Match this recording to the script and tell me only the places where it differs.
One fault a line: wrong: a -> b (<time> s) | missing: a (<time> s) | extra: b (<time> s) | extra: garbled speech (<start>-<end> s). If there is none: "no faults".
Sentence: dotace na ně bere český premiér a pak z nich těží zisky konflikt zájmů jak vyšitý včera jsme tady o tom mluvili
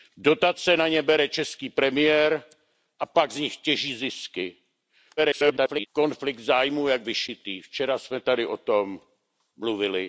extra: garbled speech (5.2-5.9 s)